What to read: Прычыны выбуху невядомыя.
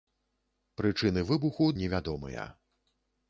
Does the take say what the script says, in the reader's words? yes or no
yes